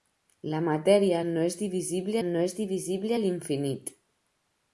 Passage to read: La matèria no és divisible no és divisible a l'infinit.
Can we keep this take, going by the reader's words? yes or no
yes